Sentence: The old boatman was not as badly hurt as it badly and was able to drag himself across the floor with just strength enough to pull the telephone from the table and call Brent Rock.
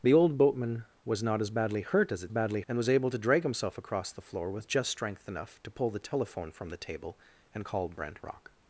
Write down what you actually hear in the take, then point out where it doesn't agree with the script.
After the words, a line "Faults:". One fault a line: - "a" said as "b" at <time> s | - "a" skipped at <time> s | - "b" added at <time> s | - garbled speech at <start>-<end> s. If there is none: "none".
The old boatman was not as badly hurt as it badly and was able to drag himself across the floor with just strength enough to pull the telephone from the table and call Brent Rock.
Faults:
none